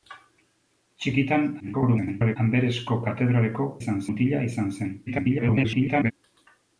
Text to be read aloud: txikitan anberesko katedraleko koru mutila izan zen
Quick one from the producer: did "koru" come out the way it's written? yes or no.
no